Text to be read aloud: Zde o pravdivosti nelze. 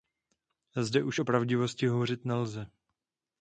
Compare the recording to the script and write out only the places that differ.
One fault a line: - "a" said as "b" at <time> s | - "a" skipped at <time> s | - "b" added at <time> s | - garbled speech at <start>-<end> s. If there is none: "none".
- "už" added at 1.0 s
- "hovořit" added at 1.9 s